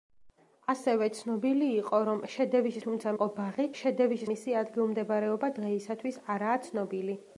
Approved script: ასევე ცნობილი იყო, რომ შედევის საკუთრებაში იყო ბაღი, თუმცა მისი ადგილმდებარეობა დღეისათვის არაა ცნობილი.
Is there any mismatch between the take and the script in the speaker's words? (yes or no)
yes